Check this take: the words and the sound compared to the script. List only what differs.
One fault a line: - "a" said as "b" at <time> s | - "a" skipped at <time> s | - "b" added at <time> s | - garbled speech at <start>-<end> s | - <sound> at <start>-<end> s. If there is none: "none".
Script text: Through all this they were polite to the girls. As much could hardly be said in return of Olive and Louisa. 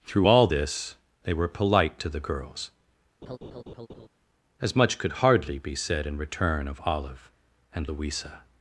- laugh at 3.2-4.1 s